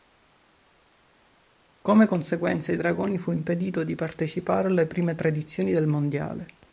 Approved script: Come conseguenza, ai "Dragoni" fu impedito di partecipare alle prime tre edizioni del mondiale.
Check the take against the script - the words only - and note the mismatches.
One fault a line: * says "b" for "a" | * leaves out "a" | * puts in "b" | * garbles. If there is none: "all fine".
all fine